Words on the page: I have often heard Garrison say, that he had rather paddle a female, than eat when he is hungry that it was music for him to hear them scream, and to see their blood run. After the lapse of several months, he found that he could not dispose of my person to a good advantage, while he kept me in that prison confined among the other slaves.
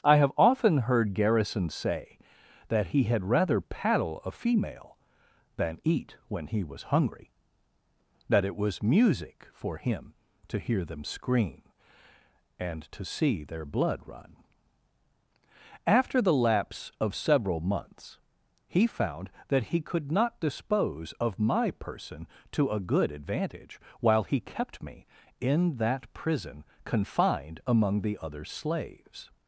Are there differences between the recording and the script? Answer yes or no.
yes